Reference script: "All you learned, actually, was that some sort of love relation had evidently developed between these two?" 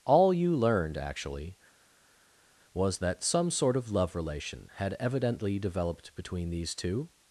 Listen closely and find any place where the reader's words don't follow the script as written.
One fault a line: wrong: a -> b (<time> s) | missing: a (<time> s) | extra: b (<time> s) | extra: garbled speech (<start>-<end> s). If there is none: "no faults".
no faults